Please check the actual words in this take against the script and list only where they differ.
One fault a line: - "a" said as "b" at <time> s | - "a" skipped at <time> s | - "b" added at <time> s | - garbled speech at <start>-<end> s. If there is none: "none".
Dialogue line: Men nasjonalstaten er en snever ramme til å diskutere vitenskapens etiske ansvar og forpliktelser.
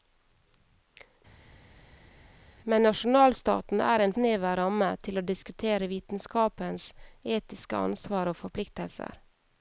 none